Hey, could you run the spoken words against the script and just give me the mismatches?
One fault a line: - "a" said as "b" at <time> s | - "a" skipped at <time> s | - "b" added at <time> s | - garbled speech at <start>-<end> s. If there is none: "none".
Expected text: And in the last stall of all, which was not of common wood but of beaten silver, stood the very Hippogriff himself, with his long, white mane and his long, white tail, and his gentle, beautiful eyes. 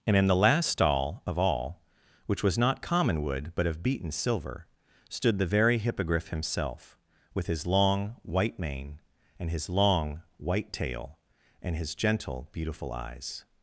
- "of" skipped at 2.8 s